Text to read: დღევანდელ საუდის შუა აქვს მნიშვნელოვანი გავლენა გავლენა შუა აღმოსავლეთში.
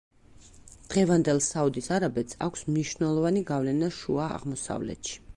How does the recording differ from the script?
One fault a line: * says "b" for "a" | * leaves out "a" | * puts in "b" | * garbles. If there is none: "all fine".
* says "არაბეთს" for "შუა"
* leaves out "გავლენა"